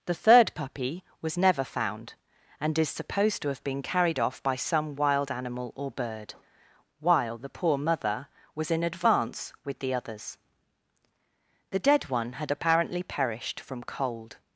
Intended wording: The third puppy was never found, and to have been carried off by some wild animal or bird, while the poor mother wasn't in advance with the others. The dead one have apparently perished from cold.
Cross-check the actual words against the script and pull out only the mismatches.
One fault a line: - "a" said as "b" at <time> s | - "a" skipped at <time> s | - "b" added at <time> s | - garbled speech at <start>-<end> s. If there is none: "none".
- "is supposed" added at 2.8 s
- "wasn't" said as "was" at 8.5 s
- "have" said as "had" at 12.3 s